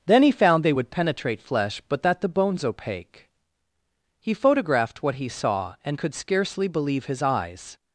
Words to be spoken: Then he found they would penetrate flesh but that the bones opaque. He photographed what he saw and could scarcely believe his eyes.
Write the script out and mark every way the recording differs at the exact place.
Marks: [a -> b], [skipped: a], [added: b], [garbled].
Then he found they would penetrate flesh but that the bones opaque. He photographed what he saw and could scarcely believe his eyes.